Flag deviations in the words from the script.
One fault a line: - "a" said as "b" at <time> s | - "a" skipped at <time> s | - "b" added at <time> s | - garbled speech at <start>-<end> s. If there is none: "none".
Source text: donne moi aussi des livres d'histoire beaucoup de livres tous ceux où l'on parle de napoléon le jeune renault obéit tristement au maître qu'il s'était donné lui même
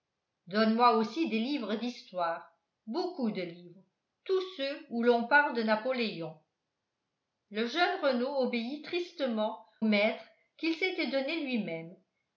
- "au" skipped at 9.6 s